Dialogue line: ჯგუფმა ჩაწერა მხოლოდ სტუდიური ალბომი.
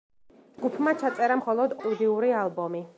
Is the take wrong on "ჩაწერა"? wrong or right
right